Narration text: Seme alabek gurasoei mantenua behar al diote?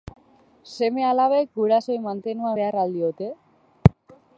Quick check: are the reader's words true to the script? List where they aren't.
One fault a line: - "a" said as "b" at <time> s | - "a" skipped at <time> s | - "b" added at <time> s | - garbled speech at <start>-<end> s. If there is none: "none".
none